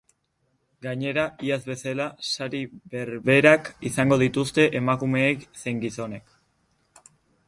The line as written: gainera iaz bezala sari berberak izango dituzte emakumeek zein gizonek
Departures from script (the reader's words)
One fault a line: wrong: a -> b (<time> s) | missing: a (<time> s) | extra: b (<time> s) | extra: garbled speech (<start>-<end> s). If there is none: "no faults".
no faults